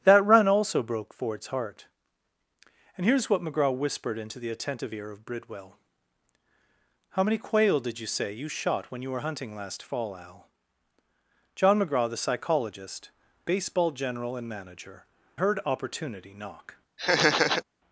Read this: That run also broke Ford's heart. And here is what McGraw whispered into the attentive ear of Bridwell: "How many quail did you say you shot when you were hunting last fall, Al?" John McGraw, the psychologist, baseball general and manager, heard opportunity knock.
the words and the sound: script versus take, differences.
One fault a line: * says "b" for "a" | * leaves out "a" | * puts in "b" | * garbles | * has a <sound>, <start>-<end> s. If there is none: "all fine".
* has a laugh, 17.0-17.6 s